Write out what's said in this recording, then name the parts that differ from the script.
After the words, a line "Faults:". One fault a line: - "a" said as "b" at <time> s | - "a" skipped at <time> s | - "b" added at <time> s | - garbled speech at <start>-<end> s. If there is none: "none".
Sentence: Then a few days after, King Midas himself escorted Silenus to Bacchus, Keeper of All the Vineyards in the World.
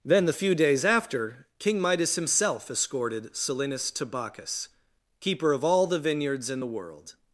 Then the few days after, King Midas himself escorted Silenus to Bacchus, Keeper of All the Vineyards in the World.
Faults:
- "a" said as "the" at 0.2 s